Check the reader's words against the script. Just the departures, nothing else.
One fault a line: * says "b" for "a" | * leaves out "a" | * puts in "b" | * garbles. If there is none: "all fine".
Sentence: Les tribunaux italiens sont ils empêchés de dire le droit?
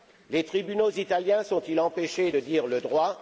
all fine